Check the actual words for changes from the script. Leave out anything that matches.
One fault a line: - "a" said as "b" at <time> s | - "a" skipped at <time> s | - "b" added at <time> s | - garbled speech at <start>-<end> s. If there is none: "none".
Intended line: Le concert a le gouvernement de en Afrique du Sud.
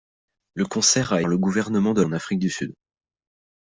none